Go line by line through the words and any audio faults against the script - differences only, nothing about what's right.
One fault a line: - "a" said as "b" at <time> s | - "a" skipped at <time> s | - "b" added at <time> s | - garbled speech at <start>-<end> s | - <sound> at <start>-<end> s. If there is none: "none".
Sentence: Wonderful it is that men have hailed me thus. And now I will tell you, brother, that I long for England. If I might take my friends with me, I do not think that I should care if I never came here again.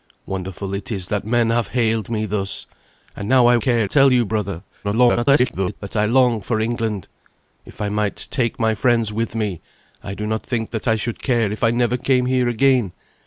- "will" said as "care" at 3.6 s
- garbled speech at 4.8-5.8 s